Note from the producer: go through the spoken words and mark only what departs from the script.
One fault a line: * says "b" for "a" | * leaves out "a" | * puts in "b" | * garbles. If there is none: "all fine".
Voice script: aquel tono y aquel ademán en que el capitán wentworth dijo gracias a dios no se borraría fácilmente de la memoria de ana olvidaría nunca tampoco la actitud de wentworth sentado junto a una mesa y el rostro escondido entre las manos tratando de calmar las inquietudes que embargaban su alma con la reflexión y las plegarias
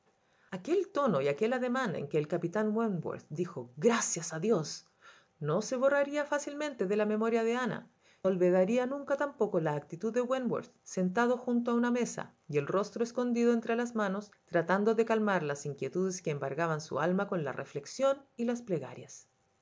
all fine